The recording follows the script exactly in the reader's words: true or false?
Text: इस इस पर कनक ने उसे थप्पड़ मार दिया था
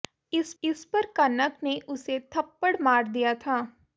true